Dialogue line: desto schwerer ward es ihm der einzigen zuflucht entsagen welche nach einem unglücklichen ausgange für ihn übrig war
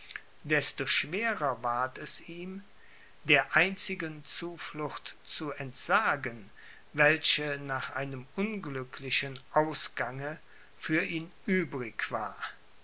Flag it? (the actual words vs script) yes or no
yes